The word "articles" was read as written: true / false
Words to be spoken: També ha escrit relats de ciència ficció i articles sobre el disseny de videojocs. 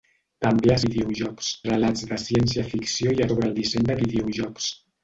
false